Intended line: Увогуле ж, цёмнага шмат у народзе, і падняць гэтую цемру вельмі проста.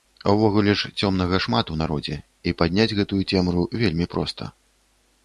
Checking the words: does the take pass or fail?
pass